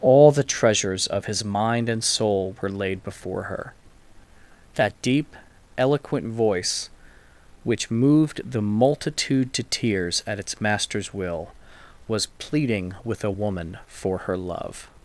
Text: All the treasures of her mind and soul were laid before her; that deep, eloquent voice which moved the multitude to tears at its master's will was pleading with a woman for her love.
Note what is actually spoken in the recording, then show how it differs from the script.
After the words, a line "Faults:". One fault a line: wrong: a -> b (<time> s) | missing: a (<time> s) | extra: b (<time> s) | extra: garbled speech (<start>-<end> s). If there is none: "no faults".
All the treasures of his mind and soul were laid before her; that deep, eloquent voice which moved the multitude to tears at its master's will was pleading with a woman for her love.
Faults:
wrong: her -> his (1.2 s)